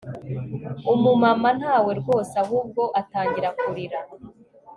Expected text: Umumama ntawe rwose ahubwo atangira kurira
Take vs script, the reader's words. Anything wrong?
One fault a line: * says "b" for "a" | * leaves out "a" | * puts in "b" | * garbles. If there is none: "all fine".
all fine